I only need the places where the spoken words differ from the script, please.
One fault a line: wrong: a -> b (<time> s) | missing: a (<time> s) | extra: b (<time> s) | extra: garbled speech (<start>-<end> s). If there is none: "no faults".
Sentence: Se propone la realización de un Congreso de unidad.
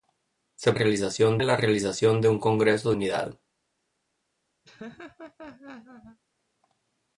wrong: propone -> realización (0.7 s)
missing: de (2.9 s)